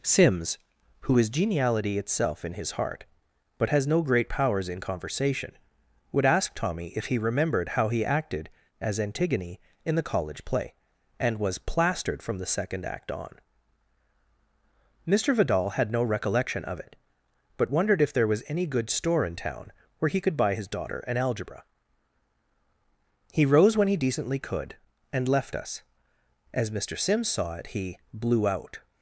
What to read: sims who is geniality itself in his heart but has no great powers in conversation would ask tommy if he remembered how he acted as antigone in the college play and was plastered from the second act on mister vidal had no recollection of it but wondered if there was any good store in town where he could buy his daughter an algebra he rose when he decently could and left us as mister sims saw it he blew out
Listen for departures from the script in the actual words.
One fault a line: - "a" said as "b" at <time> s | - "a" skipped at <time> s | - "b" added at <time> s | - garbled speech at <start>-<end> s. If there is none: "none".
none